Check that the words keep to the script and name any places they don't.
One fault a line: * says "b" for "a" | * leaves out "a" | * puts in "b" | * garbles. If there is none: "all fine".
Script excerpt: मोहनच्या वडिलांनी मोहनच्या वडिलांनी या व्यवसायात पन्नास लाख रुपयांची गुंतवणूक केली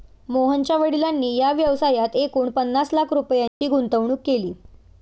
* leaves out "मोहनच्या वडिलांनी"
* puts in "एकूण"